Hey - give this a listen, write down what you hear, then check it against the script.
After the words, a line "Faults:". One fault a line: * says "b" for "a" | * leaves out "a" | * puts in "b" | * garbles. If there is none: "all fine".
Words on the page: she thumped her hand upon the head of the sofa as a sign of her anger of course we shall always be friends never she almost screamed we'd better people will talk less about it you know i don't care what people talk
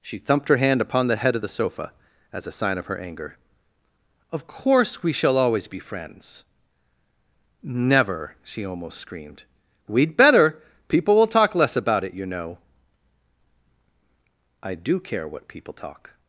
she thumped her hand upon the head of the sofa as a sign of her anger of course we shall always be friends never she almost screamed we'd better people will talk less about it you know i do care what people talk
Faults:
* says "do" for "don't"